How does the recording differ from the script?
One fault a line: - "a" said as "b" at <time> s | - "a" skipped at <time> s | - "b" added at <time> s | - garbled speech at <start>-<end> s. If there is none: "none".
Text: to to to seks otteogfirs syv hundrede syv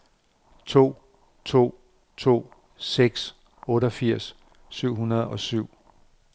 - "og" added at 5.3 s